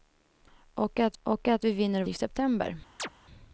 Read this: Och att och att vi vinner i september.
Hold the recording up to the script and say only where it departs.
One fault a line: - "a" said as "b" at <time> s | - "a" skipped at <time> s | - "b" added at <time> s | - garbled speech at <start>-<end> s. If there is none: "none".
none